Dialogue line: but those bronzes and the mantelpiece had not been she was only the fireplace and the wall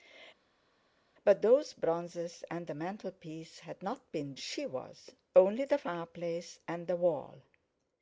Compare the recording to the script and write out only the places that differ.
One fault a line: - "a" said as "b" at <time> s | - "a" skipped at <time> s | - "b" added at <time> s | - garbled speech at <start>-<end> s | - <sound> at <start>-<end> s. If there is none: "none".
none